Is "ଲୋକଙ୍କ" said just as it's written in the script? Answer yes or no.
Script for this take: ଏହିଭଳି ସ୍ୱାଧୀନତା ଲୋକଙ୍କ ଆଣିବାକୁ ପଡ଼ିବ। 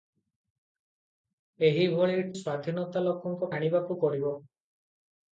yes